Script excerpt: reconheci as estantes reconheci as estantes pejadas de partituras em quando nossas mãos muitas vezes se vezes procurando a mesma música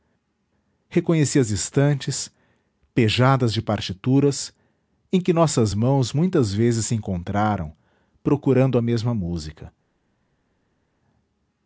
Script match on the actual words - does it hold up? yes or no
no